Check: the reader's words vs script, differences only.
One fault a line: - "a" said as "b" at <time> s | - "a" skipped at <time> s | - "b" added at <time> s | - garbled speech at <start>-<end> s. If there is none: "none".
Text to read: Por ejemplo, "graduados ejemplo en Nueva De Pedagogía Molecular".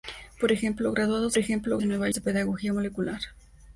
none